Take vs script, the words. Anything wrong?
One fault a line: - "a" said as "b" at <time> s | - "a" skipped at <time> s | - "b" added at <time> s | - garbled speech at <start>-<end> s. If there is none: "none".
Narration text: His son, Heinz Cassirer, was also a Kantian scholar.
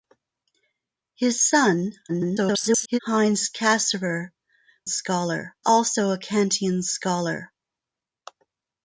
- garbled speech at 2.1-3.0 s
- "was" said as "scholar" at 4.9 s